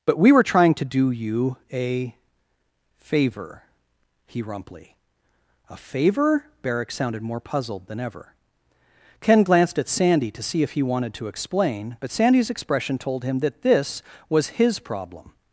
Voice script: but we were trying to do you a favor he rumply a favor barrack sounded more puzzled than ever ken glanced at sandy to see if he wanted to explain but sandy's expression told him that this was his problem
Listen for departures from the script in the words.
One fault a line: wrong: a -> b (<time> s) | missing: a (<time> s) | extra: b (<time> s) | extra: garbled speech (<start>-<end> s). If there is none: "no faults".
no faults